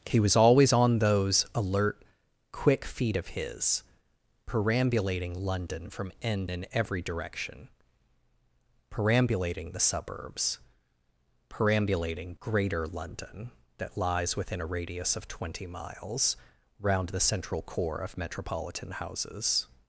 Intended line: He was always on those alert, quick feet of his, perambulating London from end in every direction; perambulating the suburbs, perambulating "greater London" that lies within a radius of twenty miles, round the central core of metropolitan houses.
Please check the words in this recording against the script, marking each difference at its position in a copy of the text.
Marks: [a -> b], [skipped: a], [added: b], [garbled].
He was always on those alert, quick feet of his, perambulating London from end in every direction; perambulating the suburbs, perambulating "greater London" that lies within a radius of twenty miles, round the central core of metropolitan houses.